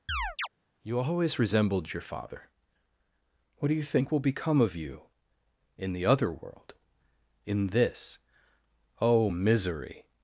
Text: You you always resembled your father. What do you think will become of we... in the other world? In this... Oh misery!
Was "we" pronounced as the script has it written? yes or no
no